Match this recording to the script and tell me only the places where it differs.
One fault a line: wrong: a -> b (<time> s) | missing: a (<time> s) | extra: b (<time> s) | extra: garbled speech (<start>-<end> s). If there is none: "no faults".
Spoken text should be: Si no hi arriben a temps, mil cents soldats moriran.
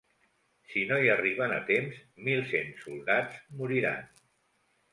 no faults